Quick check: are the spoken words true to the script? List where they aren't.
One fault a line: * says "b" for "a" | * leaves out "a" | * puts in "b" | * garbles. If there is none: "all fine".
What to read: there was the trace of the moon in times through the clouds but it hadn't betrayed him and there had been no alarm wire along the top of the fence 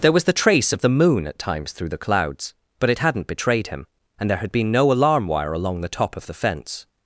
* says "at" for "in"